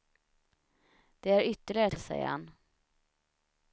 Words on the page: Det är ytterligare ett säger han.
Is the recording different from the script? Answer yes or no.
no